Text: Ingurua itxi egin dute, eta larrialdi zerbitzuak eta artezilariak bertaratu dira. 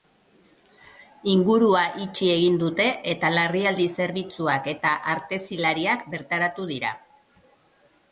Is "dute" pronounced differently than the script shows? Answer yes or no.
no